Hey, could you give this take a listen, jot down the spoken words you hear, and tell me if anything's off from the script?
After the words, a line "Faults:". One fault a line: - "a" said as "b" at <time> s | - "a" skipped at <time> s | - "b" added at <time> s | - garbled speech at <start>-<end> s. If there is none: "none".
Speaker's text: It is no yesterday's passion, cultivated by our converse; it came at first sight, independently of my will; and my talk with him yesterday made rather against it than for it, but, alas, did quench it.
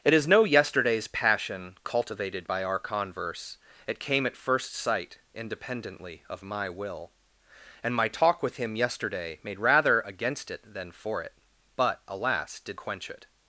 It is no yesterday's passion, cultivated by our converse; it came at first sight, independently of my will; and my talk with him yesterday made rather against it than for it, but, alas, did quench it.
Faults:
none